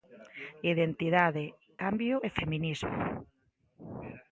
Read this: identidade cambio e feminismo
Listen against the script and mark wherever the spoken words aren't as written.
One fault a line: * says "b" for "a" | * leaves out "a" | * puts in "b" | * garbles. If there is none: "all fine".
all fine